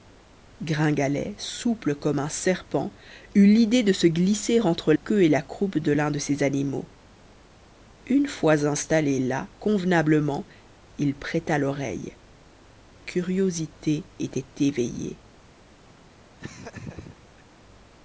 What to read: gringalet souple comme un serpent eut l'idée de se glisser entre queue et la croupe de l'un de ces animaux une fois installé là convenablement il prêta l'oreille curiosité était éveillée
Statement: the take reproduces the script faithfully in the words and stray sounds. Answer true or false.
false